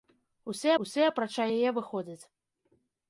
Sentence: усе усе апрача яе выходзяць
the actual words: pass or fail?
pass